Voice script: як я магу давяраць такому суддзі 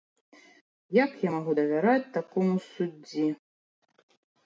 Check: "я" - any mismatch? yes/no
no